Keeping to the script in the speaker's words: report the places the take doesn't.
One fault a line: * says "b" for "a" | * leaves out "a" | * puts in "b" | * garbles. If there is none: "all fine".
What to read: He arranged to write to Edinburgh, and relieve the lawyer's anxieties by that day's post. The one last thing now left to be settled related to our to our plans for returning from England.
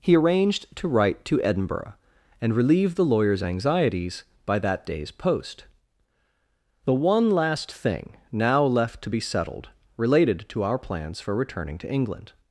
* leaves out "to our"
* says "to" for "from"